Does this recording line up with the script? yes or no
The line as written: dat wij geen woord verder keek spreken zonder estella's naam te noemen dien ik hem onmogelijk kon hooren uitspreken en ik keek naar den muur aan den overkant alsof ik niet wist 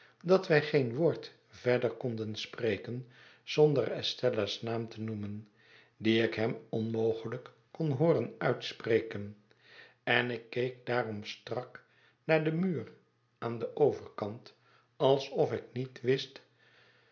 no